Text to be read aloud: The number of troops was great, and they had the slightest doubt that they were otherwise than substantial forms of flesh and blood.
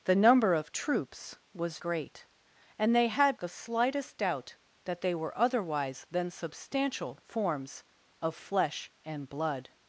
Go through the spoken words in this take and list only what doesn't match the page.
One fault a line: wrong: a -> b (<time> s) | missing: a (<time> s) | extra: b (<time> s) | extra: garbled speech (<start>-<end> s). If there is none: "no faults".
no faults